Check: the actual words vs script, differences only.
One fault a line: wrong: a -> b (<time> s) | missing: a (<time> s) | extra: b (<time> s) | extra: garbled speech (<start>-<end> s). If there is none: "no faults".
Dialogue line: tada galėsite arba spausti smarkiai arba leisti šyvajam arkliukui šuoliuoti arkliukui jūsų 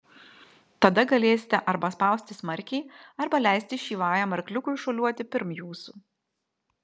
wrong: arkliukui -> pirm (5.4 s)